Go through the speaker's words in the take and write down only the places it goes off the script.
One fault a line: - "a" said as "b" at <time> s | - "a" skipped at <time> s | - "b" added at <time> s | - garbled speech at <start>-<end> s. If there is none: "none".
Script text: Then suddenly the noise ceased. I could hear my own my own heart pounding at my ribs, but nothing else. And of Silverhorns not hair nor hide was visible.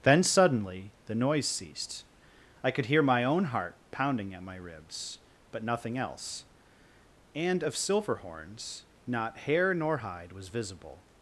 - "my own" skipped at 3.5 s